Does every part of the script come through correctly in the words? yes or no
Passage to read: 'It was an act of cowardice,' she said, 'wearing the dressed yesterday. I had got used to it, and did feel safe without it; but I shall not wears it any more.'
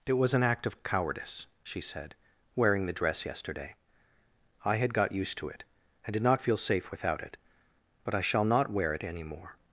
no